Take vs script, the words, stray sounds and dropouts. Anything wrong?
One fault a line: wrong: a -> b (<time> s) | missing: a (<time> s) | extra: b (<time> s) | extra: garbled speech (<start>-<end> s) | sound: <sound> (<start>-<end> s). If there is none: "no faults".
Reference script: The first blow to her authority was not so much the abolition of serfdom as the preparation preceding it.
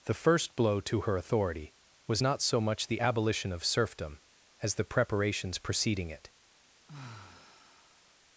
wrong: preparation -> preparations (4.8 s)
sound: sigh (6.9-8.1 s)